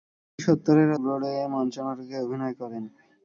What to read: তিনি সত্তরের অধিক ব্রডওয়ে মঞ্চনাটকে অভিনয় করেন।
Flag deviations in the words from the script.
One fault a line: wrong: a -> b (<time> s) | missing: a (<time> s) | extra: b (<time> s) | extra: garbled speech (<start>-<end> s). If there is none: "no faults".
missing: অধিক (0.9 s)